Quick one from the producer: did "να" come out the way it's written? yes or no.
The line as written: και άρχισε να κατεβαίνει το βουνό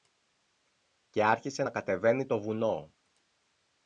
yes